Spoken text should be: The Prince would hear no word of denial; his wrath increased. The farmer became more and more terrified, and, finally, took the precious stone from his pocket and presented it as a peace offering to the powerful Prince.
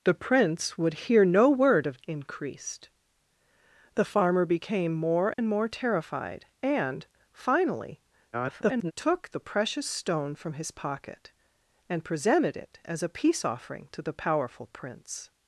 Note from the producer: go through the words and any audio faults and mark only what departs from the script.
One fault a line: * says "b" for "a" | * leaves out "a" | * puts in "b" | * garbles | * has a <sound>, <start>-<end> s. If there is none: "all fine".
* leaves out "denial his wrath"
* has a dropout, 5.3-5.4 s
* garbles